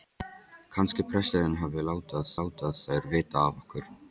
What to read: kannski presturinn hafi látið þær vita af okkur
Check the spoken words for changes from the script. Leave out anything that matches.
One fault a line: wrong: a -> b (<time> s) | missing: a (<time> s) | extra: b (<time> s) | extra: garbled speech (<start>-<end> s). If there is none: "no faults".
extra: látið (2.4 s)